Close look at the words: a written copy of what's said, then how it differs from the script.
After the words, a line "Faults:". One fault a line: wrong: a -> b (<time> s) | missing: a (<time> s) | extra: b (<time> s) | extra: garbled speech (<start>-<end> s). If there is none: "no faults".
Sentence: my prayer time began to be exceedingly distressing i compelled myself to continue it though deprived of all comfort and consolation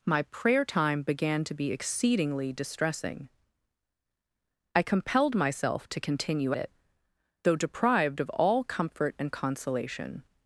my prayer time began to be exceedingly distressing i compelled myself to continue it though deprived of all comfort and consolation
Faults:
no faults